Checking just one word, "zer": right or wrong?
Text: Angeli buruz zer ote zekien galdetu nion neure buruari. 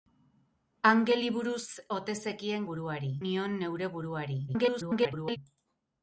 wrong